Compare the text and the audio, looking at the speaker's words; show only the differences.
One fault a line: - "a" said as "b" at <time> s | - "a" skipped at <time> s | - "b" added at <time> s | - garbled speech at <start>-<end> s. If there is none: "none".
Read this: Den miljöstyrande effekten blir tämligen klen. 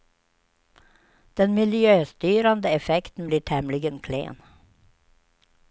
none